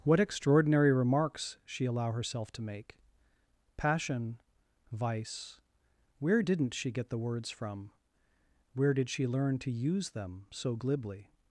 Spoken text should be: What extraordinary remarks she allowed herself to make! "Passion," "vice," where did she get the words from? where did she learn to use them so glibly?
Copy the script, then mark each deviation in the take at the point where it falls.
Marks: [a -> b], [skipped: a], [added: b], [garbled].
What extraordinary remarks she [allowed -> allow] herself to make! "Passion," "vice," where [did -> didn't] she get the words from? where did she learn to use them so glibly?